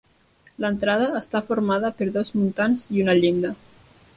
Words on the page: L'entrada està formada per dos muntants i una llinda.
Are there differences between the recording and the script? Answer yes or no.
no